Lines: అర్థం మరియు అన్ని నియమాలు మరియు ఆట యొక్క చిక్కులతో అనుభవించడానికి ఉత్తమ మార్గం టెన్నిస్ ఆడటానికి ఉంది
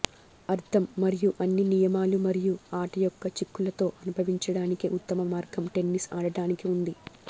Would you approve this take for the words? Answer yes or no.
yes